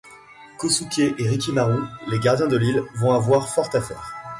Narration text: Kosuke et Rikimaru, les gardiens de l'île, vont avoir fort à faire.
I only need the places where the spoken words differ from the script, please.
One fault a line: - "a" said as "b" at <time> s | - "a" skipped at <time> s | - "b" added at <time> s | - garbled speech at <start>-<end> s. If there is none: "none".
none